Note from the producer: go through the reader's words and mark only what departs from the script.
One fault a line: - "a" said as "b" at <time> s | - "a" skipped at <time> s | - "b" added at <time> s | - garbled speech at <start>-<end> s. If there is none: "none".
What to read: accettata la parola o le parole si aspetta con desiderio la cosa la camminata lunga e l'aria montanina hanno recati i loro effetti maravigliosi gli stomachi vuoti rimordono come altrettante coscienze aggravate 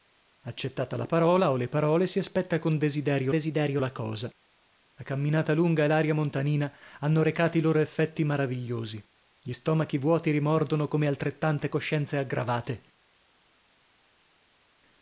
- "desiderio" added at 3.3 s